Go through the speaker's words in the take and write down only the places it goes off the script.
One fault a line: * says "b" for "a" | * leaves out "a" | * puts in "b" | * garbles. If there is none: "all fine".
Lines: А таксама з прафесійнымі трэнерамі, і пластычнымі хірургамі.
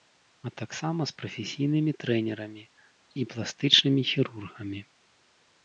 all fine